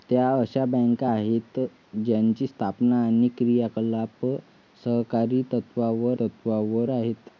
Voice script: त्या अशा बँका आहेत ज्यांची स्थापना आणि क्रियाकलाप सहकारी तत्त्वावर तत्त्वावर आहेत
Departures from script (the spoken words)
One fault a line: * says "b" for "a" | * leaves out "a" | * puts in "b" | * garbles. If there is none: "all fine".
all fine